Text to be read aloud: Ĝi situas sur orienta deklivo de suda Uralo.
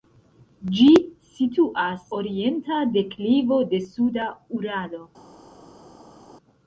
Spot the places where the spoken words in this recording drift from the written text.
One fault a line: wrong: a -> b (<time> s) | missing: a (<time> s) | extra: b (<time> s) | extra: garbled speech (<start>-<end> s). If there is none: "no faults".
missing: sur (2.1 s)